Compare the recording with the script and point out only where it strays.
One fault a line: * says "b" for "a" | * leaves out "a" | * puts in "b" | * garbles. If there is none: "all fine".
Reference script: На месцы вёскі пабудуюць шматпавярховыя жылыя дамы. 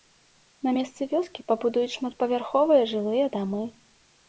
all fine